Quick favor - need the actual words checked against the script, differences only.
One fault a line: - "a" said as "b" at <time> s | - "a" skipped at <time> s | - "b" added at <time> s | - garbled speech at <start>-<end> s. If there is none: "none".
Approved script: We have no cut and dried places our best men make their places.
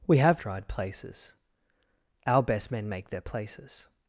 - "no cut and" skipped at 0.4 s